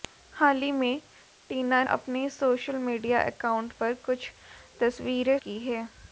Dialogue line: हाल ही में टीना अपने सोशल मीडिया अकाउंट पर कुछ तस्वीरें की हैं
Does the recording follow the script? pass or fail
pass